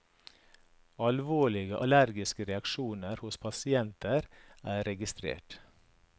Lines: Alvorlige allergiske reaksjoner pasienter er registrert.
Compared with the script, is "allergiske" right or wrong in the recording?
right